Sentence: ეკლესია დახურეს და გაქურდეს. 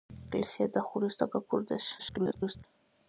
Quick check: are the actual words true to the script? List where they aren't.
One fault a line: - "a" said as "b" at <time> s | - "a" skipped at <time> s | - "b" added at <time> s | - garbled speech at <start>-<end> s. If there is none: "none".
- garbled speech at 2.0-2.6 s